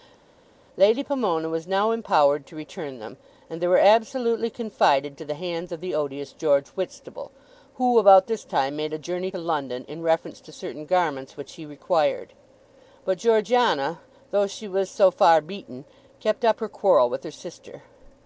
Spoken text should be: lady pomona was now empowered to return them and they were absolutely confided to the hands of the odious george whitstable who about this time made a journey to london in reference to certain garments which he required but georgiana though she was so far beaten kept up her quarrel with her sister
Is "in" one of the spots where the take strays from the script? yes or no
no